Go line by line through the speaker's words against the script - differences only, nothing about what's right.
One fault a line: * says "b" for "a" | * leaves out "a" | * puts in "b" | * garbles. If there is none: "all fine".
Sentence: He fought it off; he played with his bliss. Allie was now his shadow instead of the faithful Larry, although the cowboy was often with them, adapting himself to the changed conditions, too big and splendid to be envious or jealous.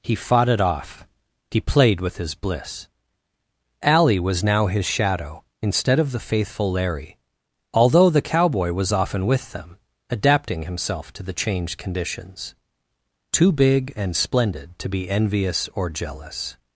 all fine